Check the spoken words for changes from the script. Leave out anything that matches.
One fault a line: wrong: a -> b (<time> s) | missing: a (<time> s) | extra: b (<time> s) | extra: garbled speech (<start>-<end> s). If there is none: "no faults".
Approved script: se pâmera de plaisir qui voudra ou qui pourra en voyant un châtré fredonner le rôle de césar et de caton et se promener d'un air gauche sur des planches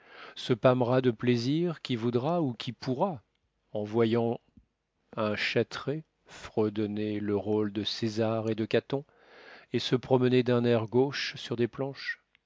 no faults